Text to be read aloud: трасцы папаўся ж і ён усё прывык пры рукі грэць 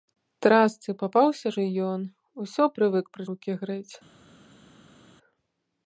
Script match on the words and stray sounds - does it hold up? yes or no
yes